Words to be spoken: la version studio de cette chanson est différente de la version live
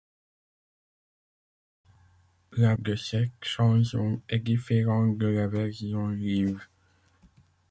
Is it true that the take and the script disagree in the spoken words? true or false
true